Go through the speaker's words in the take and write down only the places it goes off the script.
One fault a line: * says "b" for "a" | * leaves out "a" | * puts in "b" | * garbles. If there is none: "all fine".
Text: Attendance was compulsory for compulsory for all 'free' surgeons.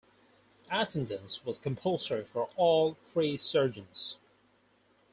* leaves out "compulsory for"